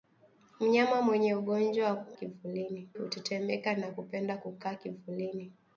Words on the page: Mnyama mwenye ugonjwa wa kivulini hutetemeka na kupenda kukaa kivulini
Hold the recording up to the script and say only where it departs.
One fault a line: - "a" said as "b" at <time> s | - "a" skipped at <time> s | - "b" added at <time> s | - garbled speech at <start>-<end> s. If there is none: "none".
none